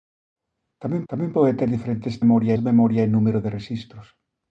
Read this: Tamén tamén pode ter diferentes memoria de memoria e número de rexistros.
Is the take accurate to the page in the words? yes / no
yes